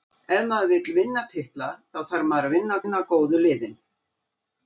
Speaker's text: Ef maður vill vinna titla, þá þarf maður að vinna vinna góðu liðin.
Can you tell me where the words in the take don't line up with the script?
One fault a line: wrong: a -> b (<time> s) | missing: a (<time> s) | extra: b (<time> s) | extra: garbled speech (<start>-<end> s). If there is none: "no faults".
no faults